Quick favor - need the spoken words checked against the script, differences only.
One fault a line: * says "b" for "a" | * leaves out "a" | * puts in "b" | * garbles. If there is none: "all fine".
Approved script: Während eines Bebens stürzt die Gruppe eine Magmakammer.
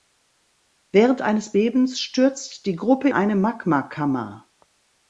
all fine